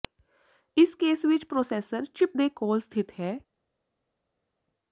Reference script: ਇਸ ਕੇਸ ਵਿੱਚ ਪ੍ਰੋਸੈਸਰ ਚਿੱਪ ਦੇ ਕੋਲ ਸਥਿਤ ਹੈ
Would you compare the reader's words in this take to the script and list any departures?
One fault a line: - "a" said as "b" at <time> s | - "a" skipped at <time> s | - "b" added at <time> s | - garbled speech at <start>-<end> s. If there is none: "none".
none